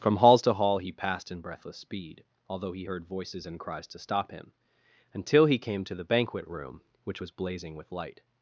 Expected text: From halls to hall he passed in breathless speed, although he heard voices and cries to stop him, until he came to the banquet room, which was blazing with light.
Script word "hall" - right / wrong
right